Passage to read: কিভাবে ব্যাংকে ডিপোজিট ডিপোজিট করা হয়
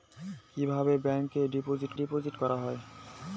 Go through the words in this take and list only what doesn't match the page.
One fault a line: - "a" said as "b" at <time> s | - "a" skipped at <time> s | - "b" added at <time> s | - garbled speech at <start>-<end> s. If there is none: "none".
none